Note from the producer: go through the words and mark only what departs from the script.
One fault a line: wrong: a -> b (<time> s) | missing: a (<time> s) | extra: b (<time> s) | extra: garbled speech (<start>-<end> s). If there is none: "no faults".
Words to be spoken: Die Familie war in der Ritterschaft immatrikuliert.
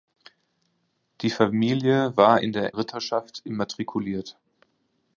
no faults